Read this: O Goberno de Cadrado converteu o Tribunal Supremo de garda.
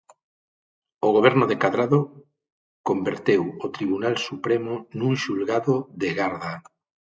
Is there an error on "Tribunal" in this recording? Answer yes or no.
no